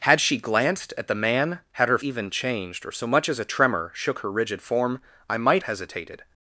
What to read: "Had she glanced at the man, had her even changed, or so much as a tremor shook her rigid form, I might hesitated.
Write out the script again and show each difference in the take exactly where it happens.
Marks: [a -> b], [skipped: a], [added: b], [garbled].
"Had she glanced at the man, had her even changed, or so much as a tremor shook her rigid form, I might hesitated.